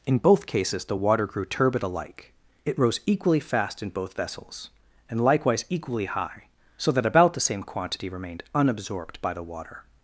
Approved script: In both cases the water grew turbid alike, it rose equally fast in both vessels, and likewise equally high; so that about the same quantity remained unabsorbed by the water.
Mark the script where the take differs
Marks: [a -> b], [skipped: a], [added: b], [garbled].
In both cases the water grew turbid alike, it rose equally fast in both vessels, and likewise equally high; so that about the same quantity remained unabsorbed by the water.